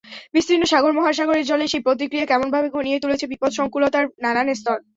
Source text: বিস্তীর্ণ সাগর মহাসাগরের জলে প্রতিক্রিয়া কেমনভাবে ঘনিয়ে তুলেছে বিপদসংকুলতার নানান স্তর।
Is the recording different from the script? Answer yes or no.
yes